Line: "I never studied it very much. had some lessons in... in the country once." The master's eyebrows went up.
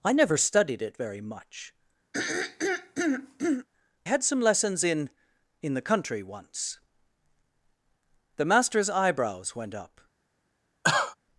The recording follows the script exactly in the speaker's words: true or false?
true